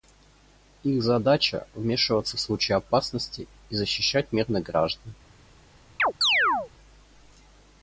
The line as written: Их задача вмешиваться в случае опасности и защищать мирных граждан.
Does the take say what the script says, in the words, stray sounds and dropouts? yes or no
no